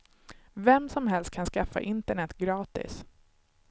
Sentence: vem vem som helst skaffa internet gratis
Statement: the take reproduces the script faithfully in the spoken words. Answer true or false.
false